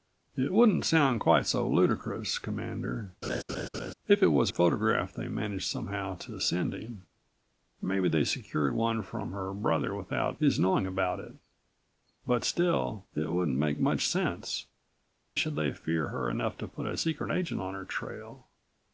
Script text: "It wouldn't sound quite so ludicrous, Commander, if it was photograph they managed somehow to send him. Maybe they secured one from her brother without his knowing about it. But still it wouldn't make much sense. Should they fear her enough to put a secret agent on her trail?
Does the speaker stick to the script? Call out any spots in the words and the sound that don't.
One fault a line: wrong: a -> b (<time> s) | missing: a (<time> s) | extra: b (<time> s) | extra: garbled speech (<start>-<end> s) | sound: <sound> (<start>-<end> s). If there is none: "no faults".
sound: laugh (3.2-3.9 s)